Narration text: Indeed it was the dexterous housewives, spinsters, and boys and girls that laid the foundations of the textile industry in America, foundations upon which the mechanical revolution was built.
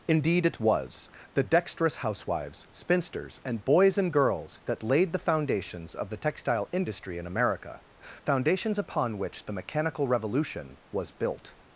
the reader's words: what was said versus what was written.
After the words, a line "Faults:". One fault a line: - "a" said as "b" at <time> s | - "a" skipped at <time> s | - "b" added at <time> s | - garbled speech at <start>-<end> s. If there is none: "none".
Indeed it was the dexterous housewives, spinsters, and boys and girls that laid the foundations of the textile industry in America, foundations upon which the mechanical revolution was built.
Faults:
none